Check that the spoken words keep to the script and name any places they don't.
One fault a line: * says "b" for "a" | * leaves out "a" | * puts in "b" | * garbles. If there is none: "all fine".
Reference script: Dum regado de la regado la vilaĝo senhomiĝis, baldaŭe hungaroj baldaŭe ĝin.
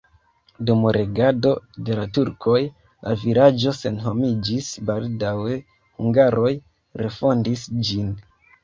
* says "turkoj" for "regado"
* says "refondis" for "baldaŭe"